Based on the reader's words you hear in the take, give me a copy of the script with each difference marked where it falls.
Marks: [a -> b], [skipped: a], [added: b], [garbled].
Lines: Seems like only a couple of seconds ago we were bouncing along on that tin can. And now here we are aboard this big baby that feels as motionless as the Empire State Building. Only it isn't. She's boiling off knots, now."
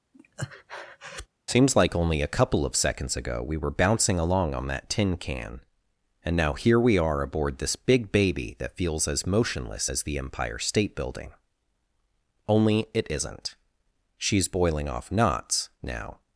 Seems like only a couple of seconds ago we were bouncing along on that tin can. And now here we are aboard this big baby that feels as motionless as the Empire State Building. Only it isn't. She's boiling off knots, now."